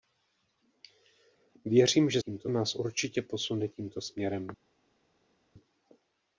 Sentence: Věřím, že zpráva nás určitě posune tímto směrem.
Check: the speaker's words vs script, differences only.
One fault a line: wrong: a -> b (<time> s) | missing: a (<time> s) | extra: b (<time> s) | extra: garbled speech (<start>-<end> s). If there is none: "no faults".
wrong: zpráva -> tímto (2.2 s)